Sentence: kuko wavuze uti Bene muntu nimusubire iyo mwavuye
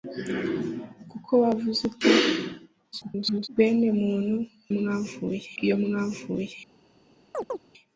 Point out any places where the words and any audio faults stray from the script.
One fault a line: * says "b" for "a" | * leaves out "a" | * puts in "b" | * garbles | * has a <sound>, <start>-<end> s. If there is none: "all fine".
* garbles
* says "mwavuye" for "nimusubire"
* has a chirp, 7.3-7.6 s